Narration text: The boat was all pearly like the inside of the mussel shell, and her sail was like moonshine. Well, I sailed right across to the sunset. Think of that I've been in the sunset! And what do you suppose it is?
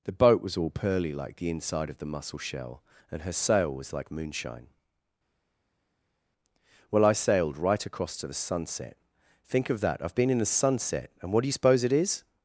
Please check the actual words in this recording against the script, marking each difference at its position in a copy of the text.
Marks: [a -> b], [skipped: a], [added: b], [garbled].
The boat was all pearly like the inside of the mussel shell, and her sail was like moonshine. Well, I sailed right across to the sunset. Think of that I've been in the sunset! And what do you suppose it is?